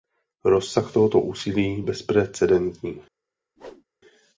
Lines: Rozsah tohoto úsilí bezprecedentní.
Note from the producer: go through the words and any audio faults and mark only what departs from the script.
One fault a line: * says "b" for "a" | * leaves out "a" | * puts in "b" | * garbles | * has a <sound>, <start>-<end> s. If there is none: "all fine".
* has a whoosh, 3.6-3.8 s